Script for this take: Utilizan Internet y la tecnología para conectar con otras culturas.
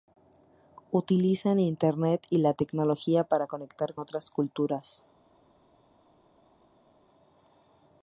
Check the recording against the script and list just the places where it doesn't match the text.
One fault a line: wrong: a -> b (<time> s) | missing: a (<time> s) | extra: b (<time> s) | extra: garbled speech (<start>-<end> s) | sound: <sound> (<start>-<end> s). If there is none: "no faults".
missing: con (4.0 s)